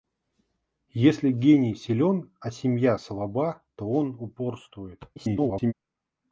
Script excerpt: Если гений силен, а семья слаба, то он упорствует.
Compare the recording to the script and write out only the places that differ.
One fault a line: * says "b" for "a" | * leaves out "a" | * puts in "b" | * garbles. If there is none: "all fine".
* garbles